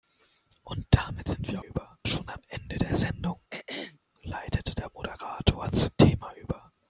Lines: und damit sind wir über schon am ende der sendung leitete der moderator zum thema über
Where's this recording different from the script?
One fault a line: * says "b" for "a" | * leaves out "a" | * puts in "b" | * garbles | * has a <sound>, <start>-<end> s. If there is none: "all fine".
* has a throat clearing, 3.5-4.0 s